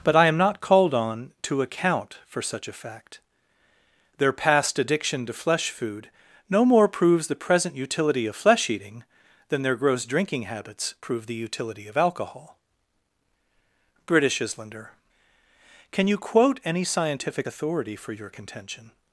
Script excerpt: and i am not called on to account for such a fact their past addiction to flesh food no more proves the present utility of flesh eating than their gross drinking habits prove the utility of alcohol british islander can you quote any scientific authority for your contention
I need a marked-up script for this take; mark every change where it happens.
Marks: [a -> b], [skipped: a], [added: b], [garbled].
[and -> but] i am not called on to account for such a fact their past addiction to flesh food no more proves the present utility of flesh eating than their gross drinking habits prove the utility of alcohol british islander can you quote any scientific authority for your contention